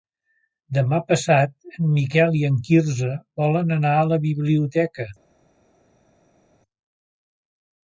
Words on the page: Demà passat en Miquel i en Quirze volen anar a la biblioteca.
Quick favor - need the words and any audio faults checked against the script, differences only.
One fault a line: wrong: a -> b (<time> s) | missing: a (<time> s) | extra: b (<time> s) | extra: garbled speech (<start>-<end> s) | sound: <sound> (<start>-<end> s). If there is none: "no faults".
no faults